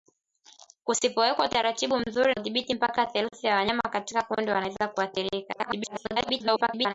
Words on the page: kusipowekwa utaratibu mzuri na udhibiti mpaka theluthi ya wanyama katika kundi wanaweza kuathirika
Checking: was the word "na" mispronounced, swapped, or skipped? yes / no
yes